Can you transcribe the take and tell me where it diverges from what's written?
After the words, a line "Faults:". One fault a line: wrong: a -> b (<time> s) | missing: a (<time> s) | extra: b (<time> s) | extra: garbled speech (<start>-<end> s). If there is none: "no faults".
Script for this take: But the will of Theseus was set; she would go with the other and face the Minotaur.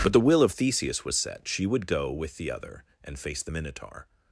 But the will of Theseus was set; she would go with the other and face the Minotaur.
Faults:
no faults